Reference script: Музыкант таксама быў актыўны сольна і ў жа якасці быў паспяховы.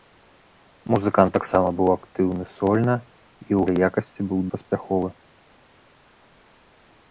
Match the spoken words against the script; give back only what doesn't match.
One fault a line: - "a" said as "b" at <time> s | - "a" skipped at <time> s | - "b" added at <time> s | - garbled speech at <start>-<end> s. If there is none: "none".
none